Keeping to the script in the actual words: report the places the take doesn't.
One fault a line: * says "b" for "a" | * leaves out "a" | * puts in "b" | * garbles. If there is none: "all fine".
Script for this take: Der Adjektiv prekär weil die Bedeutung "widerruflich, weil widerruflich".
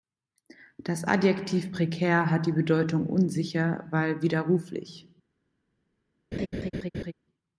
* says "Das" for "Der"
* says "hat" for "weil"
* says "unsicher" for "widerruflich"